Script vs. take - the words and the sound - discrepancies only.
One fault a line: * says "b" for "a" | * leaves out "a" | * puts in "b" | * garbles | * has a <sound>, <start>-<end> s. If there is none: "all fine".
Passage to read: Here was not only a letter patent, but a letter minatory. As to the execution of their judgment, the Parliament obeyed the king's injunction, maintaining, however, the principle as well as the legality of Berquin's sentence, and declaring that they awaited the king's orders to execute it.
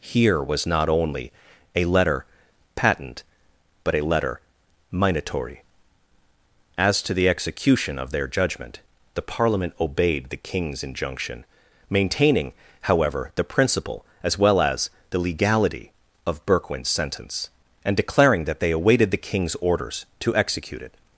all fine